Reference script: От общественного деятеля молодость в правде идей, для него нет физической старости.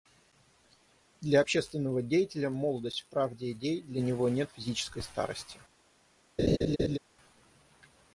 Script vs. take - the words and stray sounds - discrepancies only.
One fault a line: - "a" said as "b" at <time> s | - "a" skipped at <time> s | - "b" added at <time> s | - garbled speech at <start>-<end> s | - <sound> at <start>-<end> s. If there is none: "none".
- "От" said as "Для" at 1.2 s
- laugh at 6.4-7.0 s